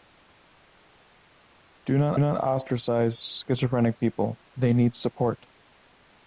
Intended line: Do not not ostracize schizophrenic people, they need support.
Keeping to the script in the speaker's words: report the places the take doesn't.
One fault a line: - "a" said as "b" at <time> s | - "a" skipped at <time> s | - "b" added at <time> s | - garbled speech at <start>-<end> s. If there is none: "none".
none